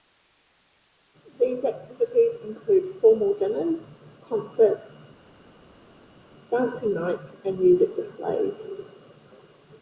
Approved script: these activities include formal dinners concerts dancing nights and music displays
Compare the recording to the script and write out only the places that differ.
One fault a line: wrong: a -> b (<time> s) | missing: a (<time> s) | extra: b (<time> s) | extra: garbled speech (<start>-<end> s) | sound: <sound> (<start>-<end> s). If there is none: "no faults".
no faults